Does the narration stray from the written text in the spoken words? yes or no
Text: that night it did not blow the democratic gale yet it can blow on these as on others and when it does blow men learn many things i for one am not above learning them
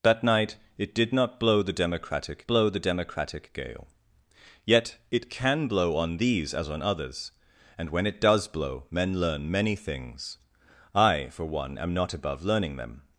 yes